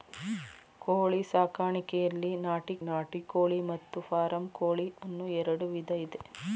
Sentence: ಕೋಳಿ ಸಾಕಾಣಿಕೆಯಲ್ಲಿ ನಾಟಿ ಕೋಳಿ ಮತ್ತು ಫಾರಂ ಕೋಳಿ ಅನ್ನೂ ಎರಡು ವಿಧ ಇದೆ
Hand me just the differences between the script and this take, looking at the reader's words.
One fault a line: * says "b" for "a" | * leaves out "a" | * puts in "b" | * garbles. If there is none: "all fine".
* puts in "ನಾಟಿ"